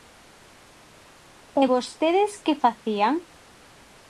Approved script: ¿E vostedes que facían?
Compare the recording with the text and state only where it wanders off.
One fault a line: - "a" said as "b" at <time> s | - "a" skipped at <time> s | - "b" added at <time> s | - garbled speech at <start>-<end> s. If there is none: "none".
none